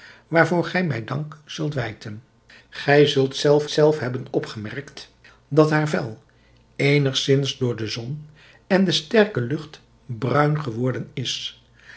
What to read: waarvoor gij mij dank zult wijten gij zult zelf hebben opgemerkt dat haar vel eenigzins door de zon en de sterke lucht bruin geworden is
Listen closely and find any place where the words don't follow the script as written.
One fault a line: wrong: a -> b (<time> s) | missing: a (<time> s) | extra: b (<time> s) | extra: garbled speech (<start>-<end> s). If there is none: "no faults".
extra: zelf (3.7 s)